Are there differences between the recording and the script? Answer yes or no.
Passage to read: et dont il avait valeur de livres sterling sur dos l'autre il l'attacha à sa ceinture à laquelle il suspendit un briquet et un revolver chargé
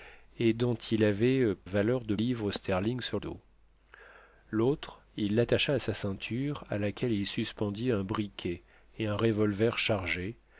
no